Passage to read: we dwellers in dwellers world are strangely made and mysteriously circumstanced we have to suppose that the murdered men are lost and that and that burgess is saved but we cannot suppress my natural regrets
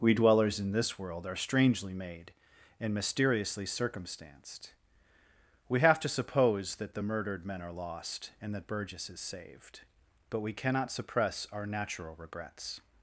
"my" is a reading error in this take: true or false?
true